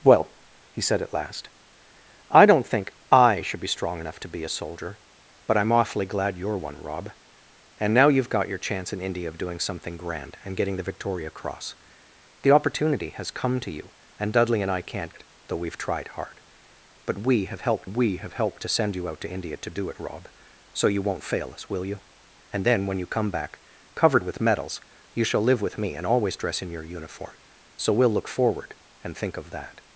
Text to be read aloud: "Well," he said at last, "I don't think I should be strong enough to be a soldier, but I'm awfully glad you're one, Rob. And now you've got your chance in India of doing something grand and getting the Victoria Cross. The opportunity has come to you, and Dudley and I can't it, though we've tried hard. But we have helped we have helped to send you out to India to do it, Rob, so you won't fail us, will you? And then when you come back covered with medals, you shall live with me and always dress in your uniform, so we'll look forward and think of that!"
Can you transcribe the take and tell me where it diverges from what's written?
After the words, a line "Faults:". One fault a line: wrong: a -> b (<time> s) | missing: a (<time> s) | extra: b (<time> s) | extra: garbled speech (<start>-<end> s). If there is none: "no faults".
"Well," he said at last, "I don't think I should be strong enough to be a soldier, but I'm awfully glad you're one, Rob. And now you've got your chance in India of doing something grand and getting the Victoria Cross. The opportunity has come to you, and Dudley and I can't it, though we've tried hard. But we have helped we have helped to send you out to India to do it, Rob, so you won't fail us, will you? And then when you come back covered with medals, you shall live with me and always dress in your uniform, so we'll look forward and think of that!"
Faults:
no faults